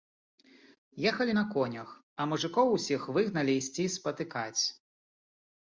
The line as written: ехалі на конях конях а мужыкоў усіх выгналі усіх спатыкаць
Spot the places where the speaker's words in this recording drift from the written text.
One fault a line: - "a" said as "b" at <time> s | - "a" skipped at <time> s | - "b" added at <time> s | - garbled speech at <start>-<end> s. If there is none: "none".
- "конях" skipped at 1.9 s
- "усіх" said as "ісці" at 3.6 s